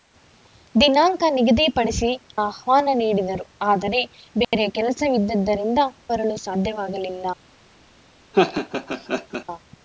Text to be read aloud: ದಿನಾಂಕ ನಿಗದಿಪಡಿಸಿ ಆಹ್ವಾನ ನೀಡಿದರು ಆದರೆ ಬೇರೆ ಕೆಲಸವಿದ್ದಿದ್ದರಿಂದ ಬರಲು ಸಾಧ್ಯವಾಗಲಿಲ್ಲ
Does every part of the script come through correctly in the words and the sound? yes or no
no